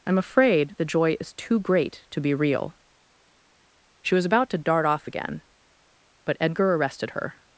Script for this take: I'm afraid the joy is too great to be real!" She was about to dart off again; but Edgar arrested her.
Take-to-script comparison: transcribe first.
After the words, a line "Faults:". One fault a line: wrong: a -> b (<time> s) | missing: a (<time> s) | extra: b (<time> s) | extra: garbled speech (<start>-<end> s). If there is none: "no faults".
I'm afraid the joy is too great to be real!" She was about to dart off again; but Edgar arrested her.
Faults:
no faults